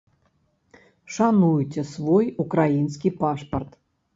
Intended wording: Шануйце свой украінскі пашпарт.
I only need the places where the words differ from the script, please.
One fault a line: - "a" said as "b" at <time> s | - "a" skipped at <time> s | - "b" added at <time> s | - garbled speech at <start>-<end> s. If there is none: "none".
none